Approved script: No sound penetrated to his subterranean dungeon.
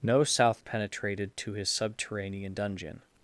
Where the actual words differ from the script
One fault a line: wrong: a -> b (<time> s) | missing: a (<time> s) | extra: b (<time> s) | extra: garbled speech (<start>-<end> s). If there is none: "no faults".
wrong: sound -> south (0.2 s)